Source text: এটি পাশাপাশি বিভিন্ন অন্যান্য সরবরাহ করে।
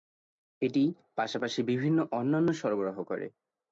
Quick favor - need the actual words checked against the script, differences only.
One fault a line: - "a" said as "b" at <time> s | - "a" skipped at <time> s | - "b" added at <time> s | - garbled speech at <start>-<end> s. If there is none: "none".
none